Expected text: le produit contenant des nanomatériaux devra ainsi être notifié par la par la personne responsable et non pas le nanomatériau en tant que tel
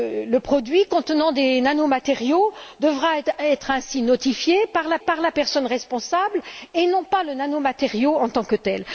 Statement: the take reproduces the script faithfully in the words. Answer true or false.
true